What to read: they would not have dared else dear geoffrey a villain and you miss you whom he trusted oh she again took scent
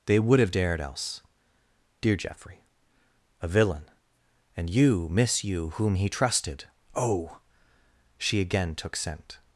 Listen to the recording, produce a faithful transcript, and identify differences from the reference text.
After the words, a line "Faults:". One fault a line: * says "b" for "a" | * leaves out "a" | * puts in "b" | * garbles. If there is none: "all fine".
they would have dared else dear geoffrey a villain and you miss you whom he trusted oh she again took scent
Faults:
* leaves out "not"